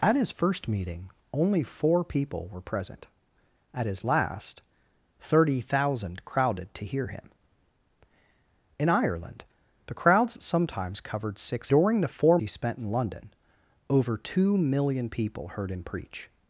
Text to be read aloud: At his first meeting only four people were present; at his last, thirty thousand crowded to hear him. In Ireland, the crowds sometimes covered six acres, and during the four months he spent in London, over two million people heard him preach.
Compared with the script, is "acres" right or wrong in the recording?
wrong